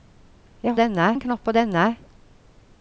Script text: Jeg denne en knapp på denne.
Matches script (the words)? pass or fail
pass